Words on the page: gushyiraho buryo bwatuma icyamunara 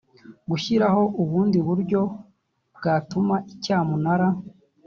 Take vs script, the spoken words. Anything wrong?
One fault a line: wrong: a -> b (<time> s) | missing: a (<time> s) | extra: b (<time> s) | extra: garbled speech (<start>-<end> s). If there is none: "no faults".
extra: ubundi (1.2 s)